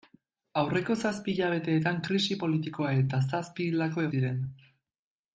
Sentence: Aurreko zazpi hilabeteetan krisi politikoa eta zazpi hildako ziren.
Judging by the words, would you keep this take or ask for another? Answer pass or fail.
pass